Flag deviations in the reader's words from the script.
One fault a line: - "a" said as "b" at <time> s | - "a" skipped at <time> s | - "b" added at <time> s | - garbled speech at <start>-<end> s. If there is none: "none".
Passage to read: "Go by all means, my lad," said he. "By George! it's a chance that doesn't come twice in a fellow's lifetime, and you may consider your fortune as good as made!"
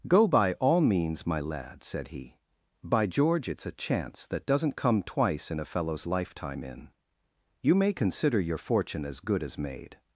- "and" said as "in" at 6.6 s